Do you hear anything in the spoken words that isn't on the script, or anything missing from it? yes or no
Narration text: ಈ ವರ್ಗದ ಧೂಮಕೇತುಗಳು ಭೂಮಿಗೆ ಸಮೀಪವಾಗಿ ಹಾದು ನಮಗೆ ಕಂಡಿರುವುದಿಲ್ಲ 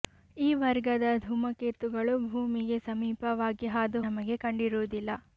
no